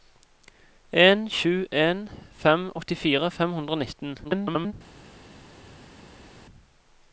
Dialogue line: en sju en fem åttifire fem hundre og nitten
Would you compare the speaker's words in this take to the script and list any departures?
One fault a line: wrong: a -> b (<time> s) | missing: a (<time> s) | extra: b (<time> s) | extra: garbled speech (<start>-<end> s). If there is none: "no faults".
extra: garbled speech (4.2-4.7 s)